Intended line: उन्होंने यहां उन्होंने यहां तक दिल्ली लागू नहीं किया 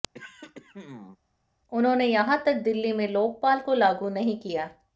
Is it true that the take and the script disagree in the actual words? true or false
true